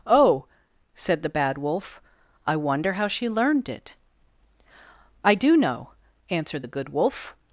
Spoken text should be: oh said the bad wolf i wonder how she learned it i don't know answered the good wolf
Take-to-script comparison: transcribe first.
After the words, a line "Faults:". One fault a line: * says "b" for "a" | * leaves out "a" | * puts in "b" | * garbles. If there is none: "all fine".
oh said the bad wolf i wonder how she learned it i do know answered the good wolf
Faults:
* says "do" for "don't"